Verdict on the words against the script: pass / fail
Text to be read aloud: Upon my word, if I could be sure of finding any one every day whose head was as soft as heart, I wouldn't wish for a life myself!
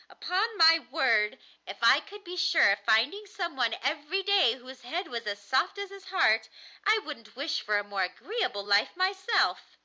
fail